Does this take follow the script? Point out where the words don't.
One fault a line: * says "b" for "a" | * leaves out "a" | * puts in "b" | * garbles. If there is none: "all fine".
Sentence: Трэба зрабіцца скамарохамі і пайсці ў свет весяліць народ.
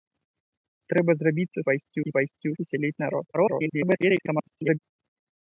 * says "пайсці" for "скамарохамі"
* leaves out "свет"
* garbles